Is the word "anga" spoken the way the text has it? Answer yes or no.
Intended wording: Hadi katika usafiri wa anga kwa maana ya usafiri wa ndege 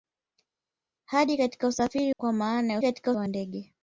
no